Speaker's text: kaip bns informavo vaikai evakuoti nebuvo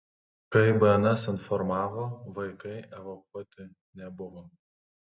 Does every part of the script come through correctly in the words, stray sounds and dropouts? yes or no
yes